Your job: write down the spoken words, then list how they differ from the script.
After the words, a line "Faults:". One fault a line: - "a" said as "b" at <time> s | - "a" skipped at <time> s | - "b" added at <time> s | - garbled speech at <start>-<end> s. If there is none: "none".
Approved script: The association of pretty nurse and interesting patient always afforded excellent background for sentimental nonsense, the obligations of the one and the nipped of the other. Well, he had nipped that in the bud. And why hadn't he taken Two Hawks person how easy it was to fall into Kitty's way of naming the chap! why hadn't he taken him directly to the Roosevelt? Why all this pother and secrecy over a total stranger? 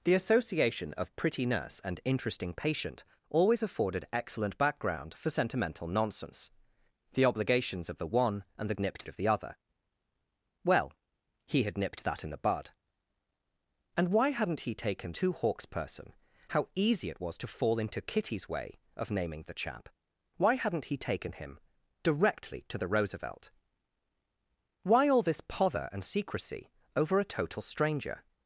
The association of pretty nurse and interesting patient always afforded excellent background for sentimental nonsense, the obligations of the one and the nipped of the other. Well, he had nipped that in the bud. And why hadn't he taken Two Hawks person how easy it was to fall into Kitty's way of naming the chap! why hadn't he taken him directly to the Roosevelt? Why all this pother and secrecy over a total stranger?
Faults:
none